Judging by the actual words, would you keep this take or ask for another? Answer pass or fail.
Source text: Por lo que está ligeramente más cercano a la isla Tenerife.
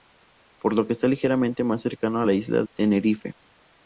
pass